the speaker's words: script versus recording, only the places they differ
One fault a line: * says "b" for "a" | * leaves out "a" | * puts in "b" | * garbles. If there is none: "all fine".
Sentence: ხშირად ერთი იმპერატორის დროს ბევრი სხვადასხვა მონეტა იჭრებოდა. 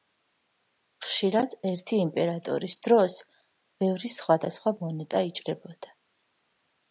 all fine